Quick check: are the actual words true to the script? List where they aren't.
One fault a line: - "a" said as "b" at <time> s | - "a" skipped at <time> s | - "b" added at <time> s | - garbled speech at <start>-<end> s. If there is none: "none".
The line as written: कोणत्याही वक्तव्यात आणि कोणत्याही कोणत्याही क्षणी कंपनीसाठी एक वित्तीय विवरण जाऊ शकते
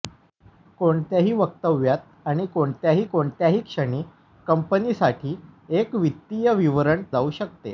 none